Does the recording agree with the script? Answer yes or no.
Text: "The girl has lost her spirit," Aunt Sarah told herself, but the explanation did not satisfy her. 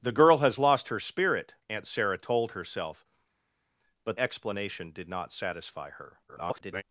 no